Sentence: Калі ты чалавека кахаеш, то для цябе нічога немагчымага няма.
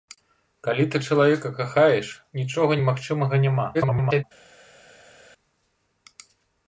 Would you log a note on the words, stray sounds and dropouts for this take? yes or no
yes